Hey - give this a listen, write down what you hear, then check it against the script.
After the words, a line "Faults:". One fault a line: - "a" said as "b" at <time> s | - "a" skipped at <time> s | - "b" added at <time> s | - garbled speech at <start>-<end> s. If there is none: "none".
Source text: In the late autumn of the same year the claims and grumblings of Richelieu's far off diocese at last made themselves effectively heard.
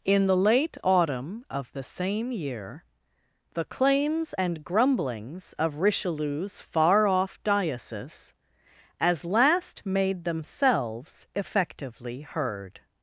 In the late autumn of the same year the claims and grumblings of Richelieu's far off diocese as last made themselves effectively heard.
Faults:
- "at" said as "as" at 9.0 s